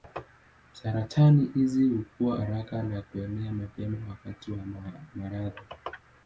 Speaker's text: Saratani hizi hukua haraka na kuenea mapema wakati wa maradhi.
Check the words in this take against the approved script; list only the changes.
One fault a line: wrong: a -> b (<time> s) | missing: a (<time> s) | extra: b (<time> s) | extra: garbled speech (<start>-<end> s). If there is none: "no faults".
no faults